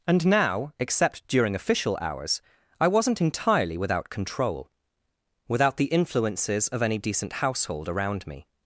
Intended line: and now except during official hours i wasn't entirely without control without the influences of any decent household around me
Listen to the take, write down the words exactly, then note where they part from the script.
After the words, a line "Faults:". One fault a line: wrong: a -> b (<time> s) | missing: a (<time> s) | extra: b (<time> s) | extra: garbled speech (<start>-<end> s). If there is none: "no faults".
and now except during official hours i wasn't entirely without control without the influences of any decent household around me
Faults:
no faults